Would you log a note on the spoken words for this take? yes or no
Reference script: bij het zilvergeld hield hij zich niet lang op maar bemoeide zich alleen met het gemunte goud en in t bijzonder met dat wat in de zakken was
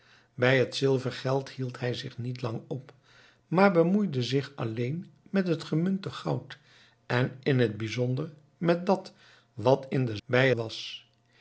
yes